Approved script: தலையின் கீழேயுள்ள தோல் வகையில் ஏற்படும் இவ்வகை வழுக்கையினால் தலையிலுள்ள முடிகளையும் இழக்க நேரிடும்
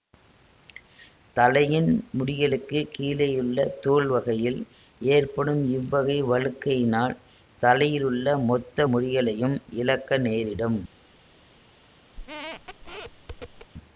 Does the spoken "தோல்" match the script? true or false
true